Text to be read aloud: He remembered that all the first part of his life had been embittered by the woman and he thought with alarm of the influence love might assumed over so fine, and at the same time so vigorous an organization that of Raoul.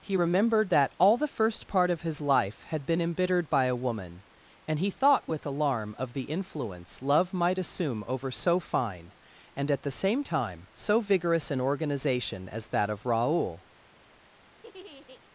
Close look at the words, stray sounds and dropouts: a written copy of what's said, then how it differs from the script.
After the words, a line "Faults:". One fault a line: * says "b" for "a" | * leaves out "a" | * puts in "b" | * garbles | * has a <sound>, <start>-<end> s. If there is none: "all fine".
He remembered that all the first part of his life had been embittered by a woman and he thought with alarm of the influence love might assume over so fine, and at the same time so vigorous an organization as that of Raoul.
Faults:
* says "a" for "the"
* says "assume" for "assumed"
* puts in "as"
* has a laugh, 14.6-15.2 s